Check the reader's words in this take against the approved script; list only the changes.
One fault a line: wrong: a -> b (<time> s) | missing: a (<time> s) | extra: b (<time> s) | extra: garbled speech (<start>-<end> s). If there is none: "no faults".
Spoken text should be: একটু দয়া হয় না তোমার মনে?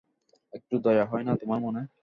no faults